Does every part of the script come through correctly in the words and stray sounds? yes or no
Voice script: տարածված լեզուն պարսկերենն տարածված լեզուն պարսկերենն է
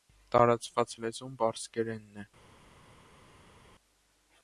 no